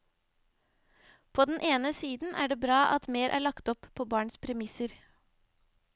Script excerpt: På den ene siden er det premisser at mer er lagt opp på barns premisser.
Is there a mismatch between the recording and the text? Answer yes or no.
yes